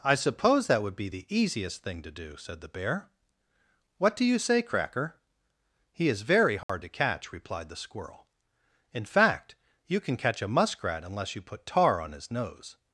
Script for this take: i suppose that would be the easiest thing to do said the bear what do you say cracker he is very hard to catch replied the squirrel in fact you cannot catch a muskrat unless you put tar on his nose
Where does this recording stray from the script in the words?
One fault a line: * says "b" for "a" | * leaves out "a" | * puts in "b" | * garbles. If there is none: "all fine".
* says "can" for "cannot"